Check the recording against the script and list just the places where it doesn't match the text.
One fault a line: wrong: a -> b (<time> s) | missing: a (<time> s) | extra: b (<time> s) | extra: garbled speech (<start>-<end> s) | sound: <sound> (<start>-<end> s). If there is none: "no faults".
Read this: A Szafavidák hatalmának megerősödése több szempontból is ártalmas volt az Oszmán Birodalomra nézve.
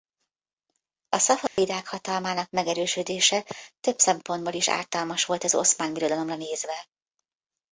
sound: dropout (1.5-1.6 s)